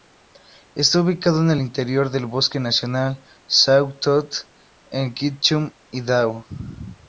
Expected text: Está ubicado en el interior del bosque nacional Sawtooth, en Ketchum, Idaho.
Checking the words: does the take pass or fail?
pass